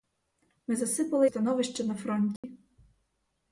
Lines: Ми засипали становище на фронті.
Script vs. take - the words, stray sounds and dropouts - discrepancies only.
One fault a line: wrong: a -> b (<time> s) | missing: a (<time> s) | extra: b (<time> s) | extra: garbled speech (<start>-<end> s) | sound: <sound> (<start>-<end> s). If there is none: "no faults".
sound: dropout (2.4-2.4 s)